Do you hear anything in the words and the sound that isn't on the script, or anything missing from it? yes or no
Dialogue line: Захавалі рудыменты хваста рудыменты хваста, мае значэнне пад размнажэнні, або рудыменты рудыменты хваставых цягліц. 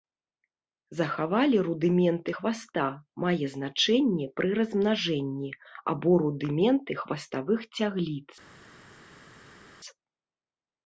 yes